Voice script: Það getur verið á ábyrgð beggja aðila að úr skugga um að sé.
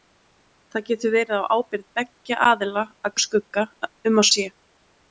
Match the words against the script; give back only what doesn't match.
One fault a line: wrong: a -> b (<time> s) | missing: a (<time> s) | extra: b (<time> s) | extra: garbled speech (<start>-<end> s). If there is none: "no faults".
no faults